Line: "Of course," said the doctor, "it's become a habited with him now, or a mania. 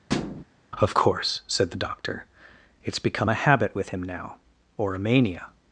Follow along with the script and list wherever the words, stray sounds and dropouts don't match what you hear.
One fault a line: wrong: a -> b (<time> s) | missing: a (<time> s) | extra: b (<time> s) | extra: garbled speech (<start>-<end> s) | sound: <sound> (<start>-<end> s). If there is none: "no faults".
sound: thud (0.1-0.4 s)
wrong: habited -> habit (3.3 s)